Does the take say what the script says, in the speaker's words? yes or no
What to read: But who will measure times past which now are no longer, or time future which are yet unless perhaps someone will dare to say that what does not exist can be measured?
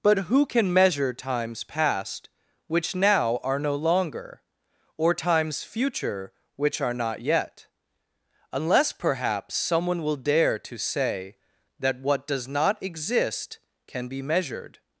no